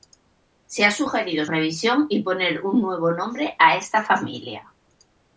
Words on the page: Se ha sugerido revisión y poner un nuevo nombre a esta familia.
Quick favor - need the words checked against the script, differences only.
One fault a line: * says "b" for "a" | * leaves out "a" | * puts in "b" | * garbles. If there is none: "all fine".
all fine